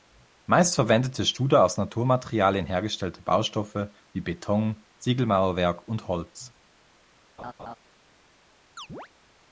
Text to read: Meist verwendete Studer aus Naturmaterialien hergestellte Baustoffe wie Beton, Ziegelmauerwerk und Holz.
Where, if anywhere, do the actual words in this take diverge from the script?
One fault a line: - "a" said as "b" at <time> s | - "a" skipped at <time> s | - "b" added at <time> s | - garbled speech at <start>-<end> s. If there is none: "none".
none